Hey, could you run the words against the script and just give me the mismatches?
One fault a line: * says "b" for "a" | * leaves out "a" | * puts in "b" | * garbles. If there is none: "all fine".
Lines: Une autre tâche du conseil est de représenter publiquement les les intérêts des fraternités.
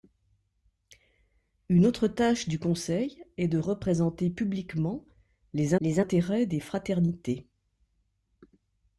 all fine